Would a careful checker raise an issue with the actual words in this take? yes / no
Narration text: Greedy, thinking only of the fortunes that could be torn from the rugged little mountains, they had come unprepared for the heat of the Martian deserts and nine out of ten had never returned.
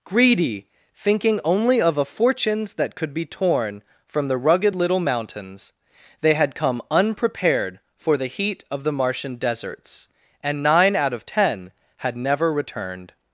yes